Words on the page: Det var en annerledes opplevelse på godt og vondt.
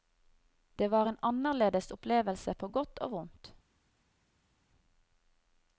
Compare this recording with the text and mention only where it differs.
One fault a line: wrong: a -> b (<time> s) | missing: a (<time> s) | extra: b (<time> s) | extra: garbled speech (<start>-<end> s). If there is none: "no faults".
no faults